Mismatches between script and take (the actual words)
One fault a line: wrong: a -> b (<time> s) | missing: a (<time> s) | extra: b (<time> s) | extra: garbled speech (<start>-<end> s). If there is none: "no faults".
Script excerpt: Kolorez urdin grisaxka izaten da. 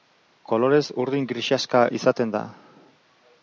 no faults